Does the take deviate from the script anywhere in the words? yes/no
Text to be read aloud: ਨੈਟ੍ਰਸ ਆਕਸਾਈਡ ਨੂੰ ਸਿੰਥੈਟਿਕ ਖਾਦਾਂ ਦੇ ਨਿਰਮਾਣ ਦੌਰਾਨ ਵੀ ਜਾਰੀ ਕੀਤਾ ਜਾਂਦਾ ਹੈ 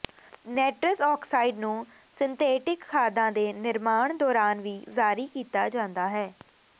no